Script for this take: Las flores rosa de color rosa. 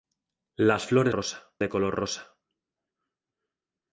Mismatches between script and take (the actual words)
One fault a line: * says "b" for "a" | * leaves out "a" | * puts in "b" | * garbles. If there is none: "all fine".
all fine